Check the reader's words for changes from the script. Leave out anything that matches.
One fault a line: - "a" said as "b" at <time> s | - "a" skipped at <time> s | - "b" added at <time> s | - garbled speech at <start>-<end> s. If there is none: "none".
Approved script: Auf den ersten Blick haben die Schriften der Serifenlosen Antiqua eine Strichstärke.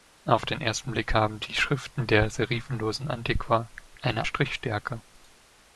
none